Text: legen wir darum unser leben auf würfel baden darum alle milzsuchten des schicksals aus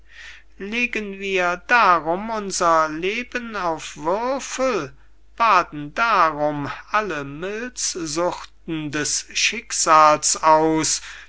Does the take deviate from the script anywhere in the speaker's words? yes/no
no